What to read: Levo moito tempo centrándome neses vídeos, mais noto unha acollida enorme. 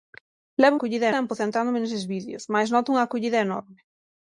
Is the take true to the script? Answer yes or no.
no